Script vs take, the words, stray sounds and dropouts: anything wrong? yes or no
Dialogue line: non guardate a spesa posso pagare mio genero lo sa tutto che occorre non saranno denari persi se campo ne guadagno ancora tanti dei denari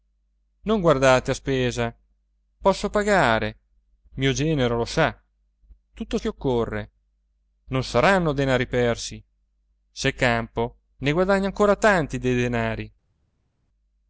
no